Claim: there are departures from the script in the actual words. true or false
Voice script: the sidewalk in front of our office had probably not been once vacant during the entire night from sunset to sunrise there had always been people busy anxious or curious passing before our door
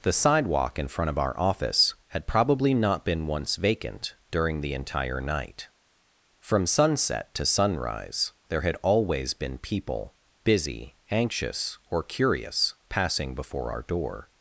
false